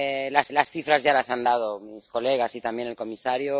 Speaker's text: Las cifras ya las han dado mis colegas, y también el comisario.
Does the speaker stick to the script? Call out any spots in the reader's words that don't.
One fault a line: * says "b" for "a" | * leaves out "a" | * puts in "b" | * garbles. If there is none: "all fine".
* puts in "las"